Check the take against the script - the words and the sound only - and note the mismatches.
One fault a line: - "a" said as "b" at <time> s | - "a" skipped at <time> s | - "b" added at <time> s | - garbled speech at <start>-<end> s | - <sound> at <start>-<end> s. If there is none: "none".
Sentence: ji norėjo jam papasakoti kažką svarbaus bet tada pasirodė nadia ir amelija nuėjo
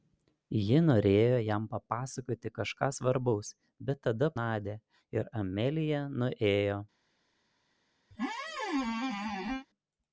- "pasirodė" skipped at 4.3 s
- squeak at 8.1-9.7 s